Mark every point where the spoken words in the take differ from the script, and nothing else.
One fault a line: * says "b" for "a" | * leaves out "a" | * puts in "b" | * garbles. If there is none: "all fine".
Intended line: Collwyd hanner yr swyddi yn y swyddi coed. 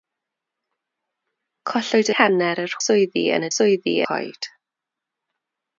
all fine